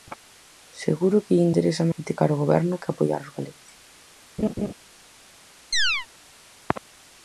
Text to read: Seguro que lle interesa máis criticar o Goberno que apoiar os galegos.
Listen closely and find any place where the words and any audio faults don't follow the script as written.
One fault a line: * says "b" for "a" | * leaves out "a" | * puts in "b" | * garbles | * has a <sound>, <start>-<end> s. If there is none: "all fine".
* leaves out "máis"
* has a laugh, 4.4-4.7 s
* has a chirp, 5.7-6.1 s